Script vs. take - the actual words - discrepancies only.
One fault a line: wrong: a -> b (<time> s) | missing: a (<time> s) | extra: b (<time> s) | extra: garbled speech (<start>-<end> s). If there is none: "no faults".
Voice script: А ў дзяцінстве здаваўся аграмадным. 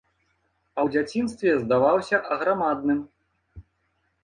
no faults